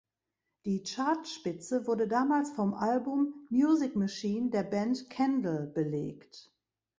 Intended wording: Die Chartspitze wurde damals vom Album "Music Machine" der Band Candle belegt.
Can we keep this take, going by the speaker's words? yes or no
yes